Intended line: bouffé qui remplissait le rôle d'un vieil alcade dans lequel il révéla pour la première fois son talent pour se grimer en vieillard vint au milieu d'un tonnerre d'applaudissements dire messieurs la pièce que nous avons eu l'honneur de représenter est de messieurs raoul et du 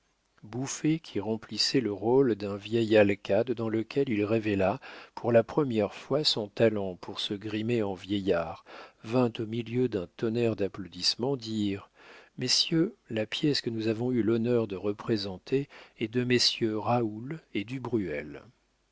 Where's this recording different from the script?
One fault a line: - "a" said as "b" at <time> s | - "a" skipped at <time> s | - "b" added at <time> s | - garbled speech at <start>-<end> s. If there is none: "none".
none